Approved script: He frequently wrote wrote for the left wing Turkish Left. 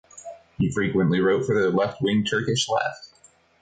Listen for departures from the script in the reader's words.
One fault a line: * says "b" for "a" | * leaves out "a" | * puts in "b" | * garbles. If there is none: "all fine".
* leaves out "wrote"